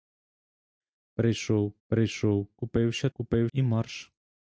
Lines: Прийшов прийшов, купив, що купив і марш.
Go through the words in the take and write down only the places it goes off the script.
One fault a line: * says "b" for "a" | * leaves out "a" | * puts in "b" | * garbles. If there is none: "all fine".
all fine